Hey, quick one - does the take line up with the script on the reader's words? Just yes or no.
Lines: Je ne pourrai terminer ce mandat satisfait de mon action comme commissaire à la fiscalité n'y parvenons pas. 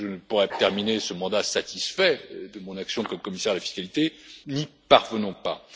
yes